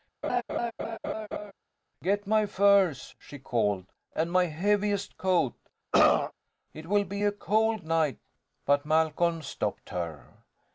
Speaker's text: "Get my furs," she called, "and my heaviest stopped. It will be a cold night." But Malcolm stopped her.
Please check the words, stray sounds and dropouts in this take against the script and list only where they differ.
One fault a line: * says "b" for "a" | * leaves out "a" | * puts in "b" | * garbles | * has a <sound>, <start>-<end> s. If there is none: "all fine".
* has a laugh, 0.2-1.5 s
* says "coat" for "stopped"
* has a throat clearing, 5.9-6.3 s